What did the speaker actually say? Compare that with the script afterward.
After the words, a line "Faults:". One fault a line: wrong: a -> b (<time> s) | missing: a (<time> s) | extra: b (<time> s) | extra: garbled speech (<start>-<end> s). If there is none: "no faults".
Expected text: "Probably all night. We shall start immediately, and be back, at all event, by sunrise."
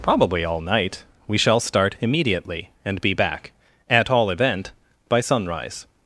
"Probably all night. We shall start immediately, and be back, at all event, by sunrise."
Faults:
no faults